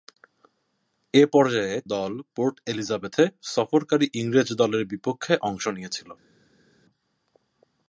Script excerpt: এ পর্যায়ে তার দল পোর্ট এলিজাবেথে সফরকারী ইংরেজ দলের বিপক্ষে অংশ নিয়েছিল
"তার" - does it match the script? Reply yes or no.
no